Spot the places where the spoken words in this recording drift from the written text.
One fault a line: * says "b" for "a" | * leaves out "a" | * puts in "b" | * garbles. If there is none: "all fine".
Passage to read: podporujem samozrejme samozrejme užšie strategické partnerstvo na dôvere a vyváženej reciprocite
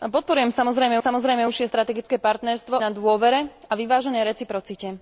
all fine